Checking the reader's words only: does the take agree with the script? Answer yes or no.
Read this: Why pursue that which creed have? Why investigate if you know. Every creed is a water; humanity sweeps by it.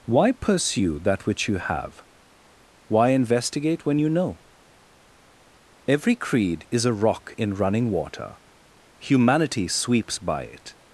no